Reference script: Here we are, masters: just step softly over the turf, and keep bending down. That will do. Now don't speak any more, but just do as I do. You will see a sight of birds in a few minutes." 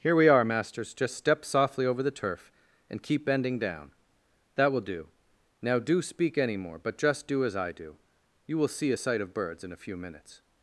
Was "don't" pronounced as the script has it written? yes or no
no